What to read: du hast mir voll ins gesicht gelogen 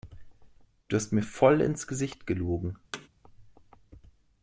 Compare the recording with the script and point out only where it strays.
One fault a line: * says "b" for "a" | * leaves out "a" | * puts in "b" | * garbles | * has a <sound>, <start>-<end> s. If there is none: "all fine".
* has a thud, 2.9-3.1 s